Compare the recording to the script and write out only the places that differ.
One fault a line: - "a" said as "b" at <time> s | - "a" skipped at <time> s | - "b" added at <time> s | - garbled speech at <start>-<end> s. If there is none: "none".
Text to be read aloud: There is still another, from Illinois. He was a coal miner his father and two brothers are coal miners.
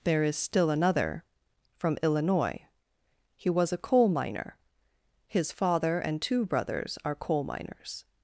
none